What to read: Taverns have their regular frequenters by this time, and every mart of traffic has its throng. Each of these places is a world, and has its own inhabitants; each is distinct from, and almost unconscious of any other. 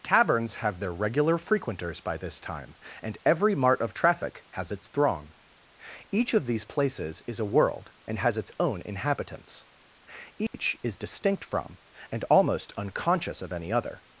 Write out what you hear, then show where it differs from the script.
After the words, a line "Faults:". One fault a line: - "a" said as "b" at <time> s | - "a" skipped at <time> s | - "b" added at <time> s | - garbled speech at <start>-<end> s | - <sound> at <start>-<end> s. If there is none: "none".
Taverns have their regular frequenters by this time, and every mart of traffic has its throng. Each of these places is a world, and has its own inhabitants; each is distinct from, and almost unconscious of any other.
Faults:
- dropout at 10.5-10.5 s